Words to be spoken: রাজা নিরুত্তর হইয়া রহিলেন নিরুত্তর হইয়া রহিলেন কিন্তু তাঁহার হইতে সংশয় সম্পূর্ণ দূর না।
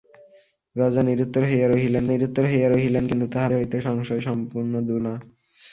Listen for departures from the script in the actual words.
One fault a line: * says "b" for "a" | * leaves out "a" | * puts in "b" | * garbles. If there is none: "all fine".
all fine